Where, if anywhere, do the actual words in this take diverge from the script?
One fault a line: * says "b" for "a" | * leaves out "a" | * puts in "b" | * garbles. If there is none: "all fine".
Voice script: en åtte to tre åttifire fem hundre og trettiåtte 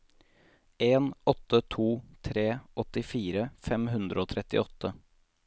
all fine